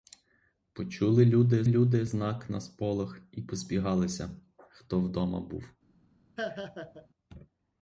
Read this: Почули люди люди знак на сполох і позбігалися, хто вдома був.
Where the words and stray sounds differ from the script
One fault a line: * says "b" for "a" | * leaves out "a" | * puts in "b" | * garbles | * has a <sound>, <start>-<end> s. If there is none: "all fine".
* has a laugh, 6.4-7.1 s